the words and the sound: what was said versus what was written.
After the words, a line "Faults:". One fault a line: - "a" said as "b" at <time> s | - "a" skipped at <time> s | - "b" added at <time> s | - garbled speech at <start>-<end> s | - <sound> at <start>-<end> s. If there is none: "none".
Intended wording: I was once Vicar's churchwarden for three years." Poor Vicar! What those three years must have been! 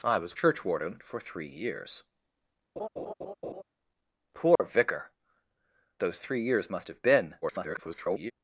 I was churchwarden for three years." Poor Vicar! Those three years must have been! [garbled]
Faults:
- "once Vicar's" skipped at 0.3 s
- laugh at 2.8-3.6 s
- dropout at 4.6-4.6 s
- "What" skipped at 5.1 s
- garbled speech at 7.4-8.3 s